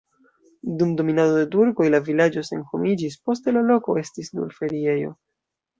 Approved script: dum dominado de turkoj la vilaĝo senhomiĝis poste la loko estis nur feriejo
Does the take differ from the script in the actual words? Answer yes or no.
no